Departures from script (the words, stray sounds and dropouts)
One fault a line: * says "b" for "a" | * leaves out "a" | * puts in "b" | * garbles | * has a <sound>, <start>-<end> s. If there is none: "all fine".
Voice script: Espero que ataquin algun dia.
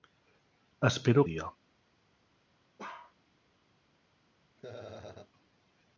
* leaves out "que ataquin algun"
* has a bark, 2.8-3.2 s
* has a laugh, 4.6-5.3 s